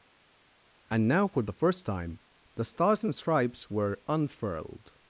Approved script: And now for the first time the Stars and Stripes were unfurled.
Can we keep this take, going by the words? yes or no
yes